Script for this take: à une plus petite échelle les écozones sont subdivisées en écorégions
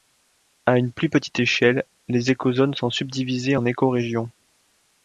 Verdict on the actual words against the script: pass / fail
pass